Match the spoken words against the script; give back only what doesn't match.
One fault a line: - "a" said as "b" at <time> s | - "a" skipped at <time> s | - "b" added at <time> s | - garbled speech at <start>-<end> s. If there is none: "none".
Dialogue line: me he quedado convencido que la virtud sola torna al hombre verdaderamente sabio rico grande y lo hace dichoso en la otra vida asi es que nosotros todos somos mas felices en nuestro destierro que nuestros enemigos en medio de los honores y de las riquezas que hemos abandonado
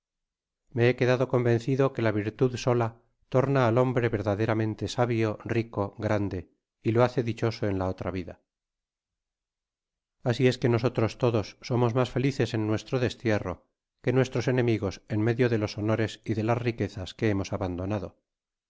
none